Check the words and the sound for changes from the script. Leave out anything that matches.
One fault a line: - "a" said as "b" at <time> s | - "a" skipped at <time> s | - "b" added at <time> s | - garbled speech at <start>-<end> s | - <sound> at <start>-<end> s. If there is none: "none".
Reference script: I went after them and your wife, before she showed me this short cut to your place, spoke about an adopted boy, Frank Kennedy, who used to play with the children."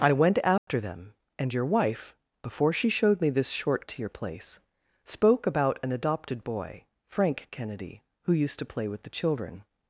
- dropout at 0.6-0.7 s
- "cut" skipped at 3.9 s